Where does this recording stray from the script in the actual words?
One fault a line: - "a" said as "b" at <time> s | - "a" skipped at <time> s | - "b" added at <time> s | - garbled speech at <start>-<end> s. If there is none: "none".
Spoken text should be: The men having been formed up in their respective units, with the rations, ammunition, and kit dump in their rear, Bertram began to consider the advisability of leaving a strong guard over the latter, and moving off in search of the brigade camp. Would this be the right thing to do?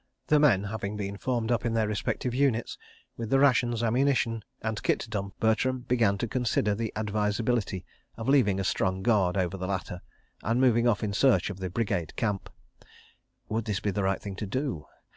- "in their rear" skipped at 5.3 s